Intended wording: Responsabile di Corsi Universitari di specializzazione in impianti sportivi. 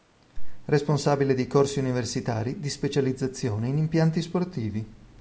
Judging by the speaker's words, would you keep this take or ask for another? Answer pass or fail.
pass